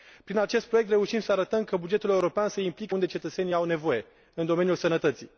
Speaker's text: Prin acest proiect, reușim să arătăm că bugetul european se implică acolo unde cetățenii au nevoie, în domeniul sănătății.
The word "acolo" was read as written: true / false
false